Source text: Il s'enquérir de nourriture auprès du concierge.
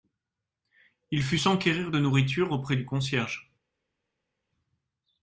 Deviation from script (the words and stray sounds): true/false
true